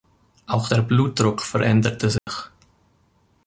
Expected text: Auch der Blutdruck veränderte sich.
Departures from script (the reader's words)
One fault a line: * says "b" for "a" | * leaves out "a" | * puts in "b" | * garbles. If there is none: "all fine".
all fine